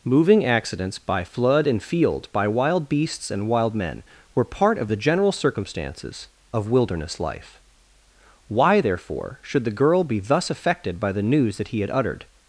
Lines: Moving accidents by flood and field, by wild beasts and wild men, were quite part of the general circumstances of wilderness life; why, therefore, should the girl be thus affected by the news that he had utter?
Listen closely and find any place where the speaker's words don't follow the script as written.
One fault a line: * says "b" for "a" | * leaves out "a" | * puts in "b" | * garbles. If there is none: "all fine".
* leaves out "quite"
* says "uttered" for "utter"